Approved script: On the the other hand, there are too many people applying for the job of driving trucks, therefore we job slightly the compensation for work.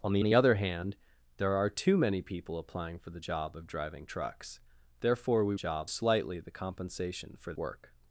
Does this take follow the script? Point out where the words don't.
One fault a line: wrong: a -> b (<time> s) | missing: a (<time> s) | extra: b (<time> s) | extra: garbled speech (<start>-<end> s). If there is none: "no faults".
no faults